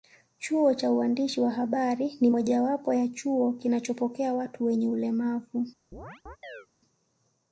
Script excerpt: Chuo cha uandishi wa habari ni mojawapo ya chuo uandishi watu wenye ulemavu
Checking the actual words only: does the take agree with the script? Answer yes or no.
no